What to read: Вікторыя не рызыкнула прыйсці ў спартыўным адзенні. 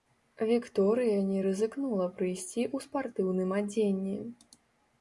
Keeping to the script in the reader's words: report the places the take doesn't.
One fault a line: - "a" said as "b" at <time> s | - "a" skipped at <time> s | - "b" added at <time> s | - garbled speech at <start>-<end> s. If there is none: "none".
none